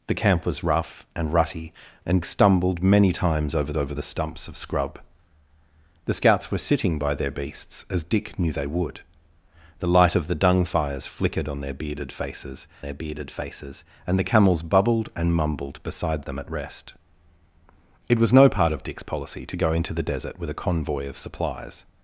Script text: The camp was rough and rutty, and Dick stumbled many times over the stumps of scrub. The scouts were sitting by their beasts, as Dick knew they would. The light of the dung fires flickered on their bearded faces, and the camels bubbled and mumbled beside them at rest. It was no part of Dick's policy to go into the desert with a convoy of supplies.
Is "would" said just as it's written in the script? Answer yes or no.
yes